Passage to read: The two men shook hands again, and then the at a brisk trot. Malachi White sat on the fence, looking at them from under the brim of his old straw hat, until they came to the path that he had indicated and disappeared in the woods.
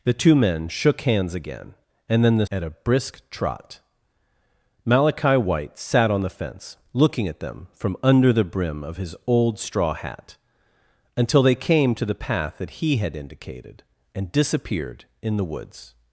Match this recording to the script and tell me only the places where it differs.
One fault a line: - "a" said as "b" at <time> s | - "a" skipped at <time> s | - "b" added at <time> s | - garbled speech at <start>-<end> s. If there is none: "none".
none